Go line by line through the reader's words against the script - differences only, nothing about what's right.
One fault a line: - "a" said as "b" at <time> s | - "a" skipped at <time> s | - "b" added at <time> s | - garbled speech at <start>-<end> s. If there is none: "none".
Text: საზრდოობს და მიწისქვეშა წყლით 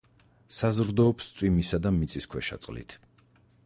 - "წვიმისა" added at 1.4 s